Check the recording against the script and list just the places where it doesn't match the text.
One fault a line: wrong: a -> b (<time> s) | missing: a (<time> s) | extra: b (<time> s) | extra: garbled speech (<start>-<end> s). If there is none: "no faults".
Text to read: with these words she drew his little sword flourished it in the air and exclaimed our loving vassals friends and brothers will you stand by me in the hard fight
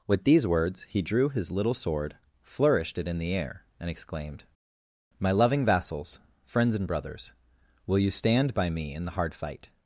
wrong: she -> he (0.9 s)
wrong: our -> my (5.2 s)